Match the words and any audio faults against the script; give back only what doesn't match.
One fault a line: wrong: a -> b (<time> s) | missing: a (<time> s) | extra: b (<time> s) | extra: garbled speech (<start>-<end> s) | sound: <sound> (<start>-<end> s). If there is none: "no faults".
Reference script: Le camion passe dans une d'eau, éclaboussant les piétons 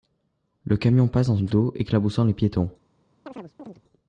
sound: chirp (3.3-3.8 s)